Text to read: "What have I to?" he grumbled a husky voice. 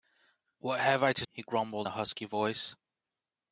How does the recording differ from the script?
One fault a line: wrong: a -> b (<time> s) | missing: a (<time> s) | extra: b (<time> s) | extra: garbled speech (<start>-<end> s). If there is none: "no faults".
no faults